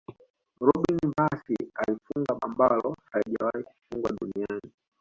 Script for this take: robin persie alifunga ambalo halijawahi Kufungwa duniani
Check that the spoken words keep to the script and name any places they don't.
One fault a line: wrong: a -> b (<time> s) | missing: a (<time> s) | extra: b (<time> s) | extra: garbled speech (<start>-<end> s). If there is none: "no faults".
no faults